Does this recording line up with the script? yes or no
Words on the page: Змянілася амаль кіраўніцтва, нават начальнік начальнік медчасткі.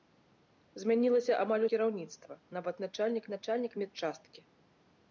yes